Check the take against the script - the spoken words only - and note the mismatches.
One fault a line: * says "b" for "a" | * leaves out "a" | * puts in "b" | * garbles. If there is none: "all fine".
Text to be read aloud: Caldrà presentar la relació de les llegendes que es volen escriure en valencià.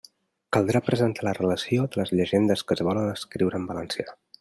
all fine